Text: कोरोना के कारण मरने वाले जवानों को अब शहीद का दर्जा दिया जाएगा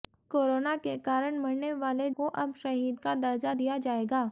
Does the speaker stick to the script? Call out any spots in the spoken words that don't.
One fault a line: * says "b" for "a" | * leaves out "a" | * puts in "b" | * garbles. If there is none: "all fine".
* leaves out "जवानों"